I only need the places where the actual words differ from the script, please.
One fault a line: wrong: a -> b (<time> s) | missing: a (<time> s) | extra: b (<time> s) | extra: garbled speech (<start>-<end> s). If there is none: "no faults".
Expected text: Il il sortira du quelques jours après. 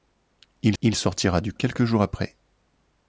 no faults